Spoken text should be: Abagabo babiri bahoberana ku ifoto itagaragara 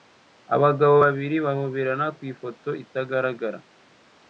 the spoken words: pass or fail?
pass